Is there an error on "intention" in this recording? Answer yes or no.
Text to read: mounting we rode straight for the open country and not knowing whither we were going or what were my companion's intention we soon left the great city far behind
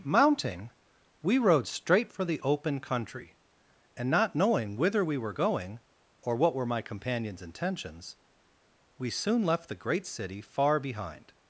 yes